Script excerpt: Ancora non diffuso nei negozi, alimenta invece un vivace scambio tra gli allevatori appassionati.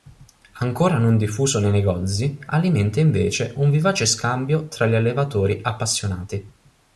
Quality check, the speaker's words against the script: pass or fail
pass